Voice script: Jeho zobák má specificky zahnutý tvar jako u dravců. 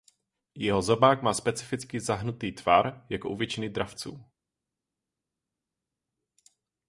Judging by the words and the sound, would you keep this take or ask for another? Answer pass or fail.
fail